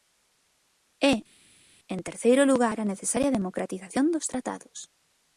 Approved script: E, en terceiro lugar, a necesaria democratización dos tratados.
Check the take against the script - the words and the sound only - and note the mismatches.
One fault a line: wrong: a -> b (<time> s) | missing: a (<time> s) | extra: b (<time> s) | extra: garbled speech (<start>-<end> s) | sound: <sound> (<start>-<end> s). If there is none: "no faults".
no faults